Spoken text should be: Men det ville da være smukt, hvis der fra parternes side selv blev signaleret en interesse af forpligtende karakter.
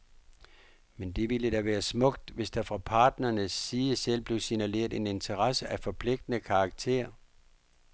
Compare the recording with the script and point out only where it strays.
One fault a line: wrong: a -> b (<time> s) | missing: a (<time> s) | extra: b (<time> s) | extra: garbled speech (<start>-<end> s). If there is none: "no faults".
no faults